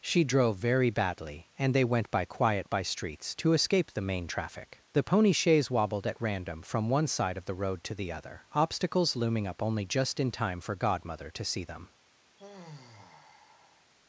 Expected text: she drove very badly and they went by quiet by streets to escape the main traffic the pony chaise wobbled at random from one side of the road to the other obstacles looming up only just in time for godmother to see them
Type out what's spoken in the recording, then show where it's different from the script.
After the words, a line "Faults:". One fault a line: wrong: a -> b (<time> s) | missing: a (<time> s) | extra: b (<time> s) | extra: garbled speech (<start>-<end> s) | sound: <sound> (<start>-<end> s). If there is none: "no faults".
she drove very badly and they went by quiet by streets to escape the main traffic the pony chaise wobbled at random from one side of the road to the other obstacles looming up only just in time for godmother to see them
Faults:
sound: sigh (12.4-13.9 s)